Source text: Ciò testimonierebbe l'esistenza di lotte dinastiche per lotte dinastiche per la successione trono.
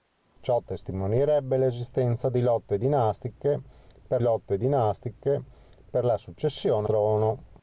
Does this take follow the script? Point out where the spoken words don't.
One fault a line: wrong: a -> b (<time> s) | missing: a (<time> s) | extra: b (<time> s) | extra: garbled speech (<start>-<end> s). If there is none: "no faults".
no faults